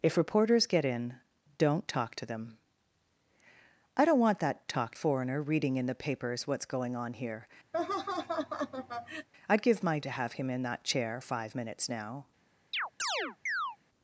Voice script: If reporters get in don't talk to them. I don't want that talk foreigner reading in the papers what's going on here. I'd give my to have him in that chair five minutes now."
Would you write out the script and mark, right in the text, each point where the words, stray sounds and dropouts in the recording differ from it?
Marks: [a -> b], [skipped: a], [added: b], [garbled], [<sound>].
If reporters get in don't talk to them. I don't want that talk foreigner reading in the papers what's going on here. [laugh] I'd give my to have him in that chair five minutes now." [chirp]